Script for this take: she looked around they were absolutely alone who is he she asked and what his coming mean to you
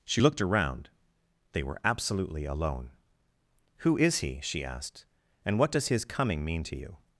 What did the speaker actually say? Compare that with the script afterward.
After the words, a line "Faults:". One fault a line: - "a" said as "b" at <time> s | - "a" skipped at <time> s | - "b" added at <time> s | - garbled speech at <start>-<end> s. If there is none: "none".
she looked around they were absolutely alone who is he she asked and what does his coming mean to you
Faults:
- "does" added at 5.7 s